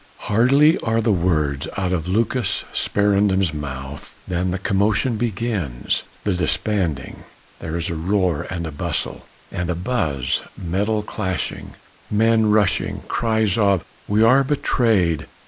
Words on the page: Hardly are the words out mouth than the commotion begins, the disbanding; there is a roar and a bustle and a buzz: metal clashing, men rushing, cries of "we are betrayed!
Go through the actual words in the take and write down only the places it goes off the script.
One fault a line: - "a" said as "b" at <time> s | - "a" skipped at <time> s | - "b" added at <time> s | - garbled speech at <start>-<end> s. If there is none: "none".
- "of Lucas Sparendam's" added at 1.9 s